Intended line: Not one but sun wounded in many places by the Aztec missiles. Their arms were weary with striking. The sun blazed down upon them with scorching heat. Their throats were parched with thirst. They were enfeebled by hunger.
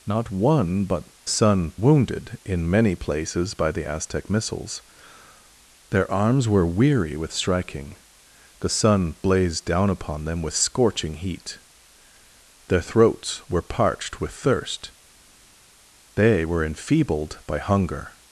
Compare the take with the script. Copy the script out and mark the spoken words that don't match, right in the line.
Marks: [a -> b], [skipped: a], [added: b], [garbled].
Not one but sun wounded in many places by the Aztec missiles. Their arms were weary with striking. The sun blazed down upon them with scorching heat. Their throats were parched with thirst. They were enfeebled by hunger.